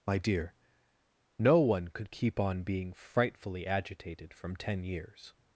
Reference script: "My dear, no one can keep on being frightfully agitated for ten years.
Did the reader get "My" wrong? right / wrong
right